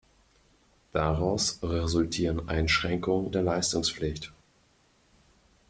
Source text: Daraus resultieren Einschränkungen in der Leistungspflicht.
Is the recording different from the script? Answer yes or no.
yes